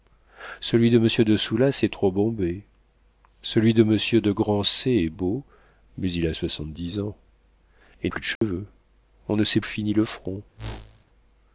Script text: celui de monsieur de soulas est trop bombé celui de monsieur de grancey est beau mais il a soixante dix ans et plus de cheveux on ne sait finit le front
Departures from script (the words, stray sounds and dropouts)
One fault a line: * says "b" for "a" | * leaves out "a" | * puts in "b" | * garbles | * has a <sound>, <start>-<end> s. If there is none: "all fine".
* has a dropout, 8.4-8.4 s
* has a whoosh, 10.6-11.1 s